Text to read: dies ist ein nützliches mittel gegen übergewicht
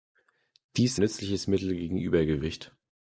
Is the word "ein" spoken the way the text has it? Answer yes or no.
no